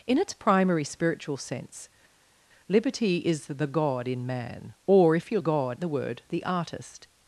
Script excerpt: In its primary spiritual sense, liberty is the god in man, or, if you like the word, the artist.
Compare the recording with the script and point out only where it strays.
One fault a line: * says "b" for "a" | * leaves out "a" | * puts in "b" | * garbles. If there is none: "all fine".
* says "god" for "like"